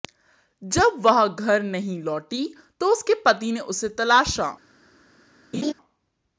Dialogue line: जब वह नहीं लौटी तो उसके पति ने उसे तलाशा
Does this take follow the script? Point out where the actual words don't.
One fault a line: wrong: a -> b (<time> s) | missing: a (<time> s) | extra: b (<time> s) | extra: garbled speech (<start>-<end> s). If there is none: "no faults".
extra: घर (1.3 s)